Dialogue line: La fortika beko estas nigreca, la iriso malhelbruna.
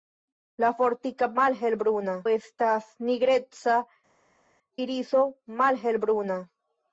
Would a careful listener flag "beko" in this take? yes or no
yes